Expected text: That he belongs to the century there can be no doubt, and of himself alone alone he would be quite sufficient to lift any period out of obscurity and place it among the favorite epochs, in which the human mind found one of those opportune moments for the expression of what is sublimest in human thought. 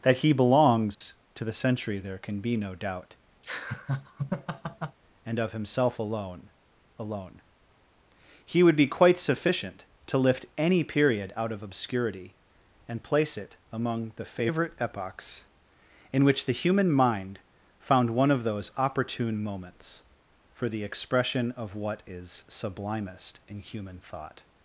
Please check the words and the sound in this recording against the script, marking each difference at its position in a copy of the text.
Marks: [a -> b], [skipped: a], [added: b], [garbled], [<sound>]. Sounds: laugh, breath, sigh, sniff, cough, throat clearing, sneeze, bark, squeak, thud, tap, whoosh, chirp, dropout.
That he belongs [dropout] to the century there can be no doubt, [laugh] and of himself alone alone he would be quite sufficient to lift any period out of obscurity and place it among the favorite epochs, in which the human mind found one of those opportune moments for the expression of what is sublimest in human thought.